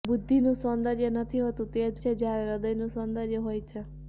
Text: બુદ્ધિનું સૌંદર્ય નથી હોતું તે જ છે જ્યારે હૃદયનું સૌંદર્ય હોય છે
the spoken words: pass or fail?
pass